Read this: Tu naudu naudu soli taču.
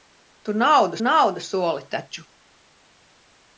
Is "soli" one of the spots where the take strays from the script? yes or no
no